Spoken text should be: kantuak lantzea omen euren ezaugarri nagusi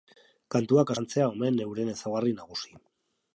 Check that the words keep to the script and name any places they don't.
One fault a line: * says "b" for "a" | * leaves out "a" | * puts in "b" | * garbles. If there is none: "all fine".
all fine